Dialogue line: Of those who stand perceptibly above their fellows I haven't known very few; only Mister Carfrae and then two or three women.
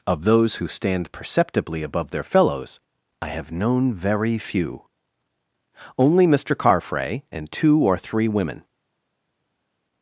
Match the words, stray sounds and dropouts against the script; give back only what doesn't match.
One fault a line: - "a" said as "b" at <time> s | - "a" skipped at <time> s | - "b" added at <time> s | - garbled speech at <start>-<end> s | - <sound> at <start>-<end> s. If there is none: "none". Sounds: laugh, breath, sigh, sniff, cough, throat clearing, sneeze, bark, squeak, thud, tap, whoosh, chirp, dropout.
- "haven't" said as "have" at 3.3 s
- "then" skipped at 7.5 s